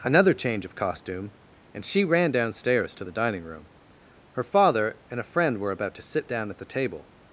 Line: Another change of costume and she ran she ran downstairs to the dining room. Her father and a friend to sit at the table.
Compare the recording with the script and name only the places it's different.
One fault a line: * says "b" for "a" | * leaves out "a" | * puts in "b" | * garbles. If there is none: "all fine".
* leaves out "she ran"
* puts in "were about"
* puts in "down"